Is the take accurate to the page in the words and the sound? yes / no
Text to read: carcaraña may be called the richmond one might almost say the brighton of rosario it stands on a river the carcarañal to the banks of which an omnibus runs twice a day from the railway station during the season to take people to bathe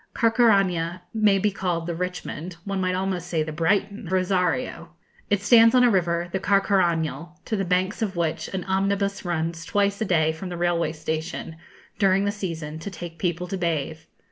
no